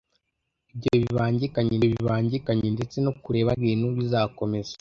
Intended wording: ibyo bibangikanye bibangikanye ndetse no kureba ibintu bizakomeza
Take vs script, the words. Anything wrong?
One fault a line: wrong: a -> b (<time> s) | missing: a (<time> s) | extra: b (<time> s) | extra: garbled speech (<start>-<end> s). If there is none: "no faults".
no faults